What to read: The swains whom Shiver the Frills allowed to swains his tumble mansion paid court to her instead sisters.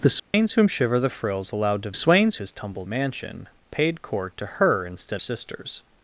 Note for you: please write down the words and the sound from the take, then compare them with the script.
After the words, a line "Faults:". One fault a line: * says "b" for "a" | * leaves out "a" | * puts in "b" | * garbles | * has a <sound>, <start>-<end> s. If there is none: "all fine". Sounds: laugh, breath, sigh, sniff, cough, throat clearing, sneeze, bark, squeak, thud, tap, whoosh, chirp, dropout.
The swains whom Shiver the Frills allowed to swains his tumble mansion paid court to her instead sisters.
Faults:
* has a dropout, 0.2-0.3 s